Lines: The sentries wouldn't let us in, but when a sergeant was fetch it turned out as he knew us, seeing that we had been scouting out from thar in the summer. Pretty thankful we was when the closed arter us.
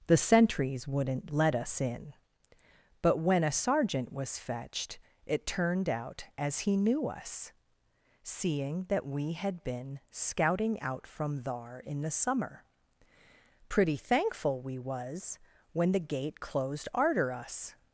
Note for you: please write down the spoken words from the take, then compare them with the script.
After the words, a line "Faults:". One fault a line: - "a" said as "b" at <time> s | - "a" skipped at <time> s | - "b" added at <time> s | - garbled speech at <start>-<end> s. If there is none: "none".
The sentries wouldn't let us in, but when a sergeant was fetched it turned out as he knew us, seeing that we had been scouting out from thar in the summer. Pretty thankful we was when the gate closed arter us.
Faults:
- "fetch" said as "fetched" at 4.4 s
- "gate" added at 16.0 s